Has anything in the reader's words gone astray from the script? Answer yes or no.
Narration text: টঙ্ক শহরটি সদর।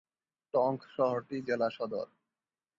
yes